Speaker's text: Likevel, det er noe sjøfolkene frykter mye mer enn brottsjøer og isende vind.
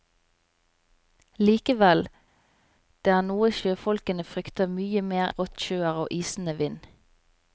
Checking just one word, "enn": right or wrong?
wrong